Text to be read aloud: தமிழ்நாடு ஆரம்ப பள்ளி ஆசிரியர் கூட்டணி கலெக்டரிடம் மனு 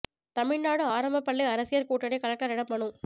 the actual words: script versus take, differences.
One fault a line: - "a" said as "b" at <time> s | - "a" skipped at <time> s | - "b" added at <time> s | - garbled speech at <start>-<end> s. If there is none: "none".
none